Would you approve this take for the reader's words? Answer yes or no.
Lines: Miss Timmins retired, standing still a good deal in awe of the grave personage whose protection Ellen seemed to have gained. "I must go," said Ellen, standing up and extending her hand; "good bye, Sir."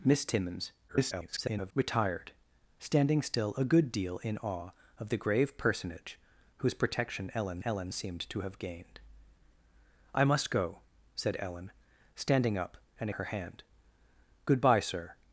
no